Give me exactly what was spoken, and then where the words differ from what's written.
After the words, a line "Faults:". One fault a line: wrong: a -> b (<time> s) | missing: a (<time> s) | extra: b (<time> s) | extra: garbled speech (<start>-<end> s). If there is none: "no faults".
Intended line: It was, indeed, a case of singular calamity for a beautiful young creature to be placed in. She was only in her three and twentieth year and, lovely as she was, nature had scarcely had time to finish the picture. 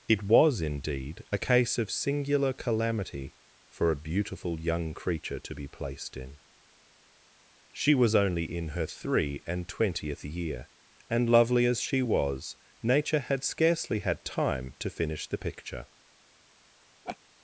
It was, indeed, a case of singular calamity for a beautiful young creature to be placed in. She was only in her three and twentieth year and, lovely as she was, nature had scarcely had time to finish the picture.
Faults:
no faults